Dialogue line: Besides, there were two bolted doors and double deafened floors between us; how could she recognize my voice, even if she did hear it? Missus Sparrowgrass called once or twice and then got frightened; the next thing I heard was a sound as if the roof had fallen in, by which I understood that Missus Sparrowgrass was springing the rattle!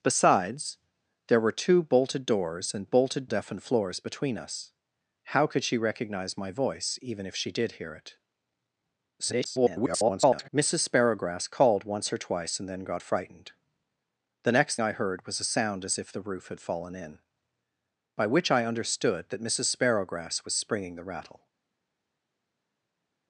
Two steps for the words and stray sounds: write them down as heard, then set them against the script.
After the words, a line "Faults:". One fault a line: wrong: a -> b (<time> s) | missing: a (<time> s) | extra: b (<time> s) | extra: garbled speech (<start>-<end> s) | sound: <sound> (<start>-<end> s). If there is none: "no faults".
Besides, there were two bolted doors and bolted deafened floors between us; how could she recognize my voice, even if she did hear it? [garbled] Missus Sparrowgrass called once or twice and then got frightened; the next I heard was a sound as if the roof had fallen in, by which I understood that Missus Sparrowgrass was springing the rattle!
Faults:
wrong: double -> bolted (2.8 s)
extra: garbled speech (9.2-10.5 s)
missing: thing (14.8 s)